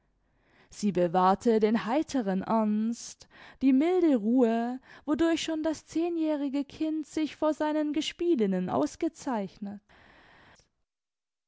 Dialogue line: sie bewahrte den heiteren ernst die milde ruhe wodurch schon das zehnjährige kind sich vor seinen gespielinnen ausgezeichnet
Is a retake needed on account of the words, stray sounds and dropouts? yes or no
no